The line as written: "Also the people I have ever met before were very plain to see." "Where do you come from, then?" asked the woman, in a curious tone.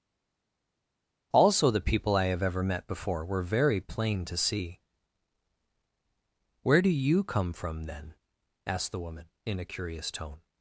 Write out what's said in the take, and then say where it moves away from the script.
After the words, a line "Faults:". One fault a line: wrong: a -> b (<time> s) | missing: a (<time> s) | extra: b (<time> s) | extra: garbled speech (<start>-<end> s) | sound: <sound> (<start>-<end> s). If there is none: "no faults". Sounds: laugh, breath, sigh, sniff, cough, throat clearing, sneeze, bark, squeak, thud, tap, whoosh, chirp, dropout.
"Also the people I have ever met before were very plain to see." "Where do you come from, then?" asked the woman, in a curious tone.
Faults:
no faults